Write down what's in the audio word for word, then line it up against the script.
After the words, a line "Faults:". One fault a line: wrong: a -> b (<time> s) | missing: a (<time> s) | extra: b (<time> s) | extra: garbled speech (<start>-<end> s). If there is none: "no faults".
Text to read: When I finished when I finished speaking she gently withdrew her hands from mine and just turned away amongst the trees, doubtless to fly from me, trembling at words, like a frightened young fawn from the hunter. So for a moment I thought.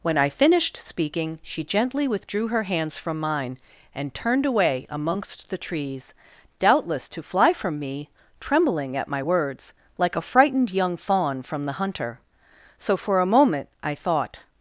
When I finished speaking she gently withdrew her hands from mine and turned away amongst the trees, doubtless to fly from me, trembling at my words, like a frightened young fawn from the hunter. So for a moment I thought.
Faults:
missing: when I finished (0.8 s)
missing: just (4.1 s)
extra: my (9.1 s)